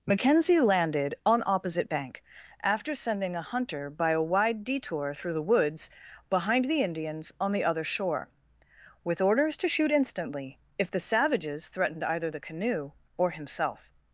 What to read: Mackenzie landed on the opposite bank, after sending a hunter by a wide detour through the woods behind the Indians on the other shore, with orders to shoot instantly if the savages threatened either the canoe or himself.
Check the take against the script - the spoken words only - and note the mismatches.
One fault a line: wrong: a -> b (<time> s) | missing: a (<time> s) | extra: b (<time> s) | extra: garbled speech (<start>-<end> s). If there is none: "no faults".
missing: the (1.4 s)